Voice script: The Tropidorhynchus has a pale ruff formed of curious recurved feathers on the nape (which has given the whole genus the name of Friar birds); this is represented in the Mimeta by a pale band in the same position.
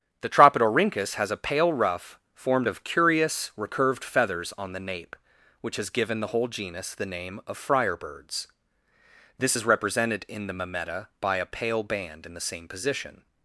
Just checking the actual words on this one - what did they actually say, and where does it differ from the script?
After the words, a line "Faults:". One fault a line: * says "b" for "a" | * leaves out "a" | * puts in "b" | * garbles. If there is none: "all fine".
The Tropidorhynchus has a pale ruff formed of curious recurved feathers on the nape (which has given the whole genus the name of Friar birds); this is represented in the Mimeta by a pale band in the same position.
Faults:
all fine